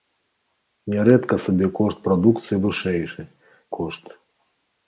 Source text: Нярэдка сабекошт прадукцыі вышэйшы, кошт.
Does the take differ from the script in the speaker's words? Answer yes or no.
no